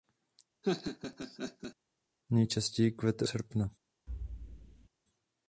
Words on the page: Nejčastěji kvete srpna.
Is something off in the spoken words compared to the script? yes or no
no